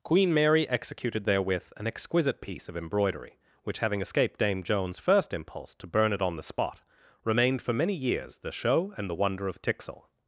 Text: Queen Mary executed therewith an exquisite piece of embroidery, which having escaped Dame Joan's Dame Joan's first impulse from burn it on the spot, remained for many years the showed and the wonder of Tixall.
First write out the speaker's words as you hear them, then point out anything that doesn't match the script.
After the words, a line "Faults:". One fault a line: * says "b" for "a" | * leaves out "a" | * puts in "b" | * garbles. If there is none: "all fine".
Queen Mary executed therewith an exquisite piece of embroidery, which having escaped Dame Joan's first impulse to burn it on the spot, remained for many years the show and the wonder of Tixall.
Faults:
* leaves out "Dame Joan's"
* says "to" for "from"
* says "show" for "showed"